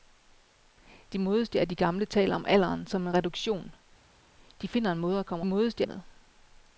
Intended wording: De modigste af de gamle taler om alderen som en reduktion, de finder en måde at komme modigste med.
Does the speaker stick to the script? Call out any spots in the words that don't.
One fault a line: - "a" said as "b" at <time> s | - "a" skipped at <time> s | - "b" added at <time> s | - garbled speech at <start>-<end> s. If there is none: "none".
none